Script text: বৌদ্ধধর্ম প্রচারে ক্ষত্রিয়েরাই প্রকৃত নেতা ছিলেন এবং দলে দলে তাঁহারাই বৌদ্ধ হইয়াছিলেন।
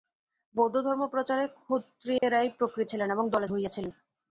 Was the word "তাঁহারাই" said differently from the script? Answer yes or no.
yes